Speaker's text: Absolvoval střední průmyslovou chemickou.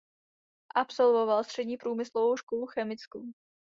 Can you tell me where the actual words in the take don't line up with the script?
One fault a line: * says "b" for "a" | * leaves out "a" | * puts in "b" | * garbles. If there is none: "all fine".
* puts in "školu"